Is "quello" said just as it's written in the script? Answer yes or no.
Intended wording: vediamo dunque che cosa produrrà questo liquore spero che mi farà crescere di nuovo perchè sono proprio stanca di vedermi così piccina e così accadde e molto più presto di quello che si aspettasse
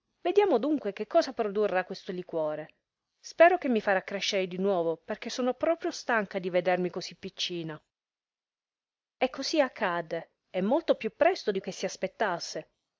no